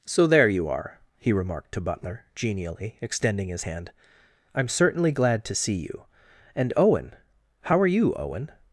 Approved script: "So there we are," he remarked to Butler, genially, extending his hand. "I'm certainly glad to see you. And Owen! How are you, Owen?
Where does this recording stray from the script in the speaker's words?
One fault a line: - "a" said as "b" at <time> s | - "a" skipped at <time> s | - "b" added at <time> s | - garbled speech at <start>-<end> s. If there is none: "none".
- "we" said as "you" at 0.5 s